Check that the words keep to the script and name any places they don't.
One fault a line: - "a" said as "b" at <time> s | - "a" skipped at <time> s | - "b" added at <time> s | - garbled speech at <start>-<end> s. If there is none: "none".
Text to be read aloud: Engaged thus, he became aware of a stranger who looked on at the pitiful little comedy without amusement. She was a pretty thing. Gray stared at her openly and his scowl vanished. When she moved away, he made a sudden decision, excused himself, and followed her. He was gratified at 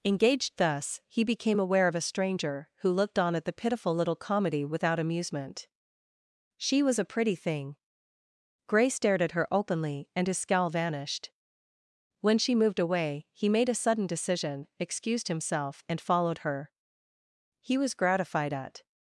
none